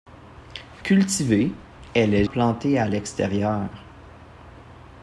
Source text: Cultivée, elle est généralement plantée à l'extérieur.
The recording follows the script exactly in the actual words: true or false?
false